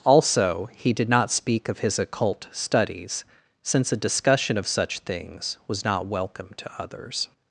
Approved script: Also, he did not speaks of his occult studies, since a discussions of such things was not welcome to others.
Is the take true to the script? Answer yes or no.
no